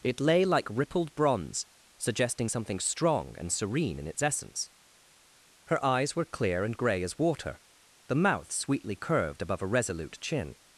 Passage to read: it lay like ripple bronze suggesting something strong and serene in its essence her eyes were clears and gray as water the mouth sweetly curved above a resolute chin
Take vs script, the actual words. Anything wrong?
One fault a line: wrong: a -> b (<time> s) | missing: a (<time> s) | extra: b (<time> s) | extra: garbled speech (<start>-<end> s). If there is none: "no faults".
wrong: ripple -> rippled (0.7 s)
wrong: clears -> clear (6.2 s)